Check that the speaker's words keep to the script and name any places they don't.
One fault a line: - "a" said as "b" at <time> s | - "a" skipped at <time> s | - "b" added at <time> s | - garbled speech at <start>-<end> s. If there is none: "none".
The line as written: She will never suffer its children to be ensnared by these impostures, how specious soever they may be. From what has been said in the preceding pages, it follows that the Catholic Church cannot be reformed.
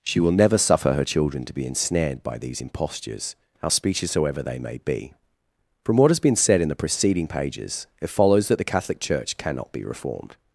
- "its" said as "her" at 0.9 s